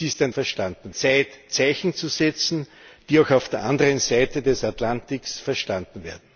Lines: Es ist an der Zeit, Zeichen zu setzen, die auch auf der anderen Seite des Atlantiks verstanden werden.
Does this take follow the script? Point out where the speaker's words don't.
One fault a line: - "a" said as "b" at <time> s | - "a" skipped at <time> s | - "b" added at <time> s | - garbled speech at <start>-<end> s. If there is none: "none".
- "der" said as "verstanden" at 0.3 s